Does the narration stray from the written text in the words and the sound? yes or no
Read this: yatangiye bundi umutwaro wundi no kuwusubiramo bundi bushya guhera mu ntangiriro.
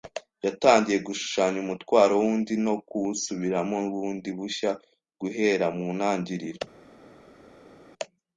yes